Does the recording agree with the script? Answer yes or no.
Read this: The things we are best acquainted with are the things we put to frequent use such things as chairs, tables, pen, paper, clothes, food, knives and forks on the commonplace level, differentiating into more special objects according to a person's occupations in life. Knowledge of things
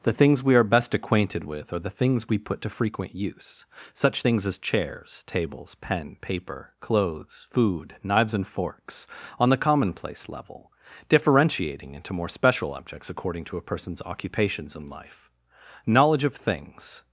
yes